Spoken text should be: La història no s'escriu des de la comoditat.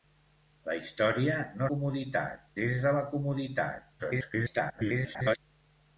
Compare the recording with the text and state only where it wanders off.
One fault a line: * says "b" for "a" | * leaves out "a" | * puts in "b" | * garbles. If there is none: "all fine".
* says "comoditat" for "s'escriu"
* garbles